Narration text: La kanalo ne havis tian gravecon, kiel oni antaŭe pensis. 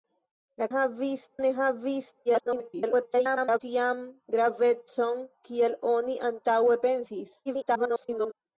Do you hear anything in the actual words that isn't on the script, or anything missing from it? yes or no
yes